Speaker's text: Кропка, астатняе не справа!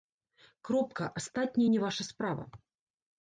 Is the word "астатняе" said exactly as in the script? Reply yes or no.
yes